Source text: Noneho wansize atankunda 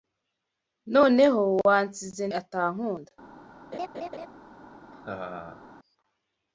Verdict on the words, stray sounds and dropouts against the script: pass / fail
fail